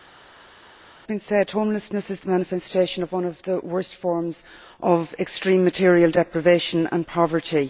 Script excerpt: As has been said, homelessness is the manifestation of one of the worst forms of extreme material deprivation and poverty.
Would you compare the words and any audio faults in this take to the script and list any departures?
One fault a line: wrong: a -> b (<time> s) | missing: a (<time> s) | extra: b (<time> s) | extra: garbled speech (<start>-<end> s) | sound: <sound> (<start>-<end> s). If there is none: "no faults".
no faults